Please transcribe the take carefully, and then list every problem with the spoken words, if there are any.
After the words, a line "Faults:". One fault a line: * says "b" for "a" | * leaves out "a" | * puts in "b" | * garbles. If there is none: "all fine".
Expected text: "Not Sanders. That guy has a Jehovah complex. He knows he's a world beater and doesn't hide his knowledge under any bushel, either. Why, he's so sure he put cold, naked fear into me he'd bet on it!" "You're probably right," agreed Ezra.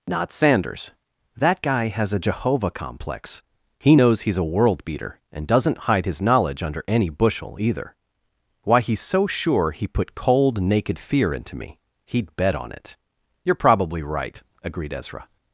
"Not Sanders. That guy has a Jehovah complex. He knows he's a world beater and doesn't hide his knowledge under any bushel, either. Why, he's so sure he put cold, naked fear into me he'd bet on it!" "You're probably right," agreed Ezra.
Faults:
all fine